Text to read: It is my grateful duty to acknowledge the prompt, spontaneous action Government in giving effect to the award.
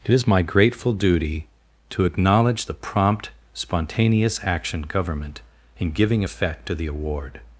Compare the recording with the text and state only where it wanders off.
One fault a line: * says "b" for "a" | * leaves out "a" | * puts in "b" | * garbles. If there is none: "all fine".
all fine